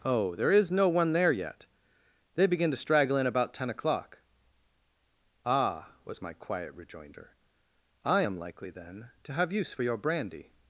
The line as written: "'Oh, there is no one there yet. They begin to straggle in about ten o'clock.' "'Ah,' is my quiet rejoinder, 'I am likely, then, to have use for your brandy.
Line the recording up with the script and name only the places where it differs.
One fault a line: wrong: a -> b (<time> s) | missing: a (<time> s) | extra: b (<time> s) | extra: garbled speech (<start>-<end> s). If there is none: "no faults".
wrong: is -> was (6.0 s)